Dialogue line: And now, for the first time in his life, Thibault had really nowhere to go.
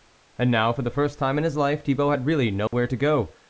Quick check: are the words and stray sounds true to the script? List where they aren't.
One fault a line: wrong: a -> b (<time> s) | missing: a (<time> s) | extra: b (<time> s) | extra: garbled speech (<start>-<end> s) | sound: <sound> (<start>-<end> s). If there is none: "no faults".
sound: dropout (2.7-2.7 s)